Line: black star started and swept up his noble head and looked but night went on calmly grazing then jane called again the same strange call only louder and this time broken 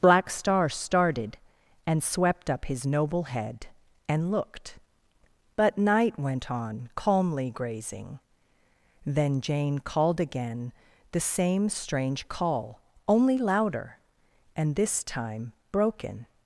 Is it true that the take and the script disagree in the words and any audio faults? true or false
false